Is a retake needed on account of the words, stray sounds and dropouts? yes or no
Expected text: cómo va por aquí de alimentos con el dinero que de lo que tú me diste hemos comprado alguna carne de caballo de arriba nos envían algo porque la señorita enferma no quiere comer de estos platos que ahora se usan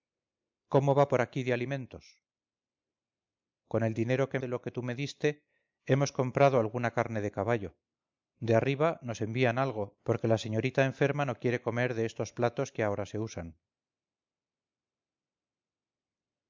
no